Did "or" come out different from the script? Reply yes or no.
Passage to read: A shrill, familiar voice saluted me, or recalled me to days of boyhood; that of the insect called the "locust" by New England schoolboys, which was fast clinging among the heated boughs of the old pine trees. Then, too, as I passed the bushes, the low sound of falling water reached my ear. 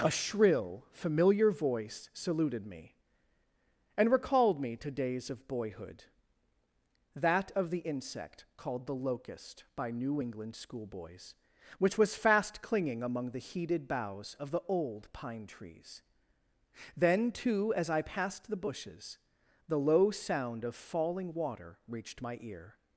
yes